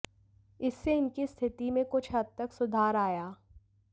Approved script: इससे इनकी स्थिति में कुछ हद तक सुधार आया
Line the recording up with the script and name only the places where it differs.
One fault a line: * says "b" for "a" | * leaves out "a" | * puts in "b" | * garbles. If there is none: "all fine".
all fine